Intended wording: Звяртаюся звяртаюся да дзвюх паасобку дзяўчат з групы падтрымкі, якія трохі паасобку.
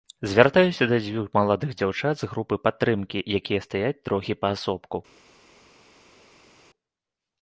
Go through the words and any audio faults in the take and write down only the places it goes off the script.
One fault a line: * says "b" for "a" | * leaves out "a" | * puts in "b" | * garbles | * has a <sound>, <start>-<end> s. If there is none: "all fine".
* leaves out "звяртаюся"
* says "маладых" for "паасобку"
* puts in "стаяць"